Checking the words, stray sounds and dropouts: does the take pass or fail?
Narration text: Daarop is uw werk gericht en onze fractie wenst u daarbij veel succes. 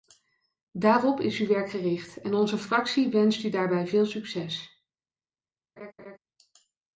fail